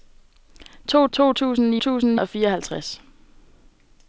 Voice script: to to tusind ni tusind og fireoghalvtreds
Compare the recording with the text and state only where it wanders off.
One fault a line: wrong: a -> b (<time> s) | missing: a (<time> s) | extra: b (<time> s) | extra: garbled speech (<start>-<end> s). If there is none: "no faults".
no faults